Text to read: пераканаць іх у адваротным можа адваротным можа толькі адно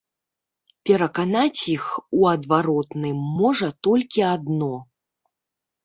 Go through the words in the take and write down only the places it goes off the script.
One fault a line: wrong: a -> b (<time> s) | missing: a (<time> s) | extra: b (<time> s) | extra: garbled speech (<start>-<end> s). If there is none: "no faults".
missing: адваротным можа (3.7 s)